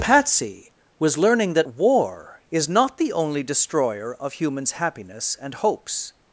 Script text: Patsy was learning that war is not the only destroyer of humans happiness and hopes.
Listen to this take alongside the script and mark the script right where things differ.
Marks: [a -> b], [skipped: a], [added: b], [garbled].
Patsy was learning that war is not the only destroyer of humans happiness and hopes.